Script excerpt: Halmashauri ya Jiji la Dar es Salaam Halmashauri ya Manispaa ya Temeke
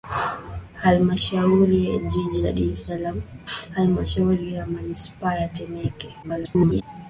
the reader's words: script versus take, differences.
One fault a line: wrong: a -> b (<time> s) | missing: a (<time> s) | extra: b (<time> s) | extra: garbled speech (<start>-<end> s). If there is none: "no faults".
extra: garbled speech (6.2-6.8 s)